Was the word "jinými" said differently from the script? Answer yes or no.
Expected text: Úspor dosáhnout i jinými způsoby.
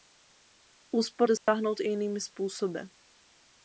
no